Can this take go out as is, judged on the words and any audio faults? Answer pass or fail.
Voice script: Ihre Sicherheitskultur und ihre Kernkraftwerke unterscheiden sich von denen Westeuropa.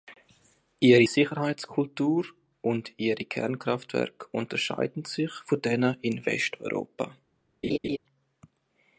fail